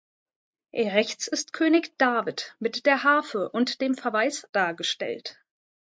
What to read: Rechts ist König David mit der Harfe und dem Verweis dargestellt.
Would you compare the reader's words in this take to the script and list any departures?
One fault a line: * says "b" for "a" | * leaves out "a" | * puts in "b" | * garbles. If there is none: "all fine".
all fine